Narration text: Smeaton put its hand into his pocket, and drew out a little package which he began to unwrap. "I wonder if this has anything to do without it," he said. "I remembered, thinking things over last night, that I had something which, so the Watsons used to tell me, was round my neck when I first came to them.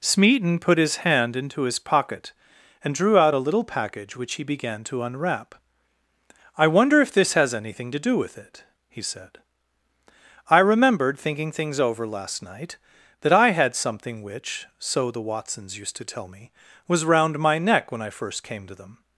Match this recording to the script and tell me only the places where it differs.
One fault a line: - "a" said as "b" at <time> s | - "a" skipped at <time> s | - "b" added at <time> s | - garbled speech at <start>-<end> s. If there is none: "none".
- "its" said as "his" at 0.8 s
- "without" said as "with" at 8.2 s